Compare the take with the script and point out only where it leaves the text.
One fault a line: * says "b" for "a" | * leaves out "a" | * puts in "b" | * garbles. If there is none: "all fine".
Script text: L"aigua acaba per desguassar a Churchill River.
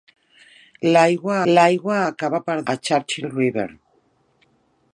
* puts in "l"aigua"
* leaves out "desguassar"